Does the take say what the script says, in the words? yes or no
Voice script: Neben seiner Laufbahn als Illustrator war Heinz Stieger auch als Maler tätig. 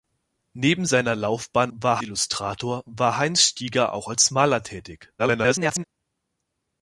no